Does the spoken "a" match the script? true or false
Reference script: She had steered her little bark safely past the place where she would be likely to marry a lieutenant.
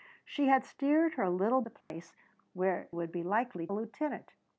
false